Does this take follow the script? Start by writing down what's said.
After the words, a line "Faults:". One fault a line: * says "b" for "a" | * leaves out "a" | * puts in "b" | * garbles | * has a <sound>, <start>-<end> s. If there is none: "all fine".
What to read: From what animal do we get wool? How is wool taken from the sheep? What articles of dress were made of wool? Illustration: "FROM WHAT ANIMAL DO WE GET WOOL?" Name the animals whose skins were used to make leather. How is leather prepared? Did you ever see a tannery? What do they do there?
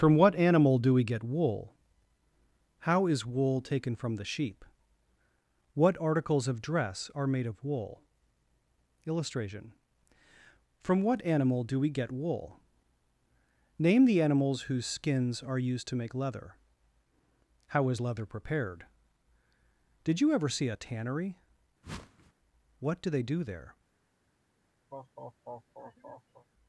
From what animal do we get wool? How is wool taken from the sheep? What articles of dress are made of wool? Illustration: "FROM WHAT ANIMAL DO WE GET WOOL?" Name the animals whose skins are used to make leather. How is leather prepared? Did you ever see a tannery? What do they do there?
Faults:
* says "are" for "were"
* says "are" for "were"
* has a whoosh, 21.8-22.3 s
* has a laugh, 24.9-26.5 s